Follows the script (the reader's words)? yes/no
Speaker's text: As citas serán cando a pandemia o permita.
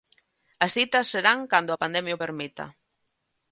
yes